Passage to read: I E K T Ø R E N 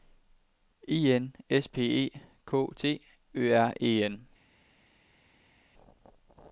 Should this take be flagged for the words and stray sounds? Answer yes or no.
yes